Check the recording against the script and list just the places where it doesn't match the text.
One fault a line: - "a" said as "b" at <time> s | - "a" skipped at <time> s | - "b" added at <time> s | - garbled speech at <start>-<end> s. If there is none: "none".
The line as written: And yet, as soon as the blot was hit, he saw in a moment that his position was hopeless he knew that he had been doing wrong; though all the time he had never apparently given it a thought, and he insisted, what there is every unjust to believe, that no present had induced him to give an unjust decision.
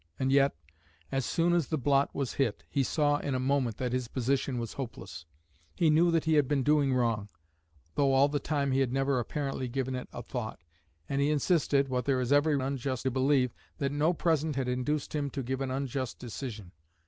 none